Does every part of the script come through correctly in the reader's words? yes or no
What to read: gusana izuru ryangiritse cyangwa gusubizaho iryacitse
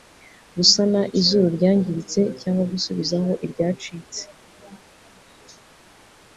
yes